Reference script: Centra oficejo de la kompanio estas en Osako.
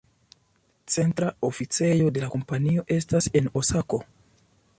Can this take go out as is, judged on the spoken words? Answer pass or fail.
pass